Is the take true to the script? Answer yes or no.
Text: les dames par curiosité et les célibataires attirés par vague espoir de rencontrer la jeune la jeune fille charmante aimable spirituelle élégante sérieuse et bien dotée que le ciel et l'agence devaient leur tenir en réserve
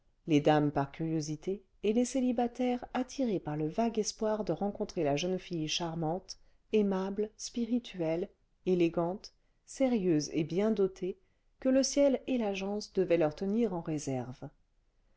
no